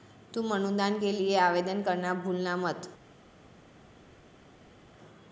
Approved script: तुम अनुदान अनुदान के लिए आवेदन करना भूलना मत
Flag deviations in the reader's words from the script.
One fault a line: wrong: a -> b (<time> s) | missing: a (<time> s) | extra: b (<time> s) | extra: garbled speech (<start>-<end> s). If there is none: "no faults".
missing: अनुदान (1.0 s)